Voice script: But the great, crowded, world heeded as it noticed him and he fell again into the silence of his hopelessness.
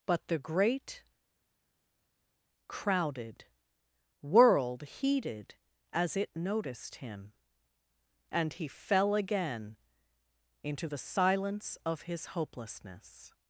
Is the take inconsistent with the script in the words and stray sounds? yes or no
no